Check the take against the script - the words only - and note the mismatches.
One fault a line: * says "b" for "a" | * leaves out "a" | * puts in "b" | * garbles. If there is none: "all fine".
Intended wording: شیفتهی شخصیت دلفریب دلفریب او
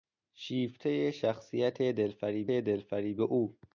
all fine